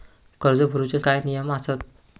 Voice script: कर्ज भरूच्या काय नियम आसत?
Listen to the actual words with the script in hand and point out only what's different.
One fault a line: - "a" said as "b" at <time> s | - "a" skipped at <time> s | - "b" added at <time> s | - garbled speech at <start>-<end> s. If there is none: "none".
none